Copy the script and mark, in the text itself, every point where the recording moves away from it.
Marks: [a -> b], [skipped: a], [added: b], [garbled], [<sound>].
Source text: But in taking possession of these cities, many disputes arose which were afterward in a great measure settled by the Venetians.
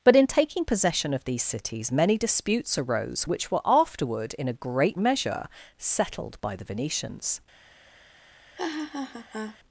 But in taking possession of these cities, many disputes arose which were afterward in a great measure settled by the Venetians. [laugh]